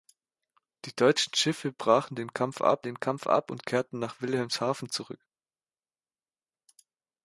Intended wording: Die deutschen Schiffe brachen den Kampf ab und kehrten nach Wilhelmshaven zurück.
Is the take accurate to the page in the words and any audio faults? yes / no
no